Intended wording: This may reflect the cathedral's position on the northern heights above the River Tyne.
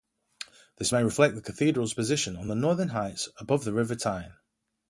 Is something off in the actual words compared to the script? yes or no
no